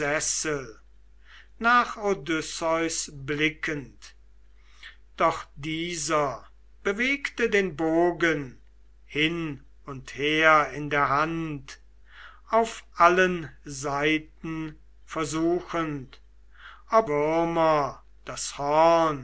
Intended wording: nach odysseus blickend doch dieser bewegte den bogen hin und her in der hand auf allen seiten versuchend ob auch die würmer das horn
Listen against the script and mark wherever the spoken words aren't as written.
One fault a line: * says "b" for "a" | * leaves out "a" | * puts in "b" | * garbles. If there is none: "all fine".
* leaves out "auch die"